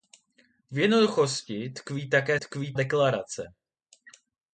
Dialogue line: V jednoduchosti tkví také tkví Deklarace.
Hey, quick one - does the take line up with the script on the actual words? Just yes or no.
yes